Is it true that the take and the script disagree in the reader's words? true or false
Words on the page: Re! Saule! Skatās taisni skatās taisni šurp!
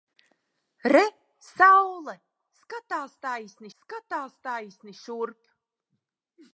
false